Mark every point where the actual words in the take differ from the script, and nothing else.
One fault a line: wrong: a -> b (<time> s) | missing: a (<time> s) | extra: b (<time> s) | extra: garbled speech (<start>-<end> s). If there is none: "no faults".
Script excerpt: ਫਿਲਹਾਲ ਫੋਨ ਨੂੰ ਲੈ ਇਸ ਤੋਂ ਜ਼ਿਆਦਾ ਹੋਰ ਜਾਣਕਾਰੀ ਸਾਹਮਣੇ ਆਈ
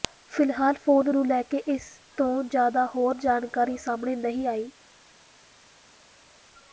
extra: ਕੇ (1.4 s)
extra: ਨਹੀਂ (4.2 s)